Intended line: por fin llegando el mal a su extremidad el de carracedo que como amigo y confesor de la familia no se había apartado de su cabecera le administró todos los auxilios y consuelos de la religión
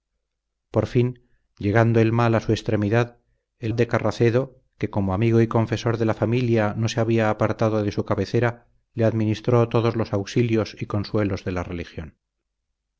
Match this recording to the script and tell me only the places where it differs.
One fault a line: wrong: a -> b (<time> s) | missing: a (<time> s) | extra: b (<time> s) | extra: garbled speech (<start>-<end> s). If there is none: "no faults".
no faults